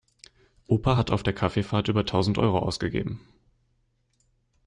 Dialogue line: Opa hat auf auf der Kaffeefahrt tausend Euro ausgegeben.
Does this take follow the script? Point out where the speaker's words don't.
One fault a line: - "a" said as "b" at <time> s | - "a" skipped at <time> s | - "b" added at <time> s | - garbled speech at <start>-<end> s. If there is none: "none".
- "auf" skipped at 1.2 s
- "über" added at 1.9 s